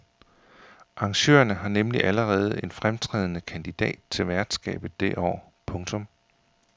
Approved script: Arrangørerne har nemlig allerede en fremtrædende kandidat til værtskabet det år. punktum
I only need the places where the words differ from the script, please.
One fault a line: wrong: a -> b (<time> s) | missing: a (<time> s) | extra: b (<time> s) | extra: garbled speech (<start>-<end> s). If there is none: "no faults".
no faults